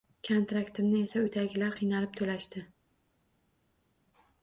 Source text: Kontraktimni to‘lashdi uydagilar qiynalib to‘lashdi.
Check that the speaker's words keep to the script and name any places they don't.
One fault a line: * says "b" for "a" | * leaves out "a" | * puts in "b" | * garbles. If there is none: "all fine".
* says "esa" for "to‘lashdi"